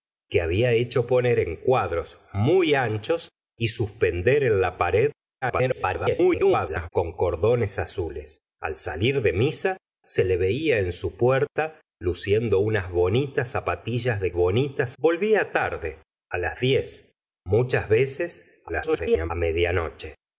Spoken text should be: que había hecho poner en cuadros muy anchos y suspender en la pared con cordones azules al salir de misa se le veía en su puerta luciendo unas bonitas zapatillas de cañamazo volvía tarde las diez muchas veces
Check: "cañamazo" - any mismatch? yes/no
yes